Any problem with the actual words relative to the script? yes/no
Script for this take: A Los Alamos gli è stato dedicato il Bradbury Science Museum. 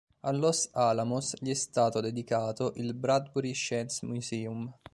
no